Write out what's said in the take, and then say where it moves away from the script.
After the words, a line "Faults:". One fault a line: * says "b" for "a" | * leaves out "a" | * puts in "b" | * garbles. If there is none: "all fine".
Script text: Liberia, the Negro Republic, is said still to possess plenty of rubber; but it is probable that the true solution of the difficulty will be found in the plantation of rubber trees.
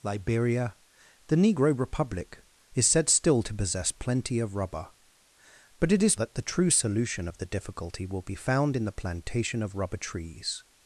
Liberia, the Negro Republic, is said still to possess plenty of rubber; but it is that the true solution of the difficulty will be found in the plantation of rubber trees.
Faults:
* leaves out "probable"